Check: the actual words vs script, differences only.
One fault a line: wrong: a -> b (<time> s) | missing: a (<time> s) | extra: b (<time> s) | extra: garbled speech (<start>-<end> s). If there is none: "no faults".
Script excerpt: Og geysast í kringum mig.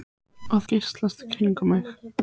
no faults